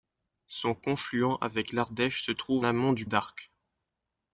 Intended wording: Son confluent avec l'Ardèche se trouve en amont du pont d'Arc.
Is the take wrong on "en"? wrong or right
wrong